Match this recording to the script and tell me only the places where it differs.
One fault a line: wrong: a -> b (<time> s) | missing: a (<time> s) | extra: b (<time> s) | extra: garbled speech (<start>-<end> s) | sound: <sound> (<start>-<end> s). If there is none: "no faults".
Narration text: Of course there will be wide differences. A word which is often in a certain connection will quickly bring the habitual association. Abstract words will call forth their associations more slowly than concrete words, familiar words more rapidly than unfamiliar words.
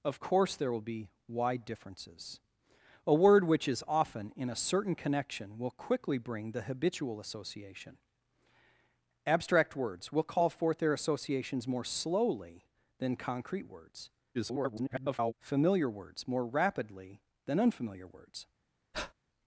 extra: garbled speech (14.3-15.3 s)
sound: breath (18.9-19.1 s)